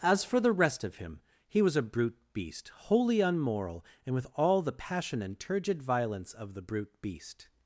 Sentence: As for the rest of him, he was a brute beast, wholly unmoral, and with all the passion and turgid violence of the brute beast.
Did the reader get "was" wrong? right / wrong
right